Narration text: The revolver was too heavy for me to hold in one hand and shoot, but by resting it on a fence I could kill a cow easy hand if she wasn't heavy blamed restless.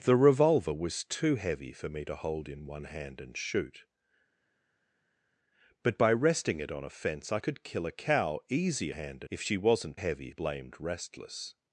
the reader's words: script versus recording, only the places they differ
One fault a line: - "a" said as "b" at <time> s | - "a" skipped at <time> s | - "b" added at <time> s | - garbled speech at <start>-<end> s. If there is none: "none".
none